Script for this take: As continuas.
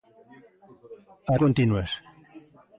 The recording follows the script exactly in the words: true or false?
true